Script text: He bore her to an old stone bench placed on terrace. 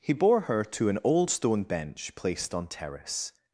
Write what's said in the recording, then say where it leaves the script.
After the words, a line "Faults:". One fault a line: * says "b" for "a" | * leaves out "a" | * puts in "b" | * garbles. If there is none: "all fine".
He bore her to an old stone bench placed on terrace.
Faults:
all fine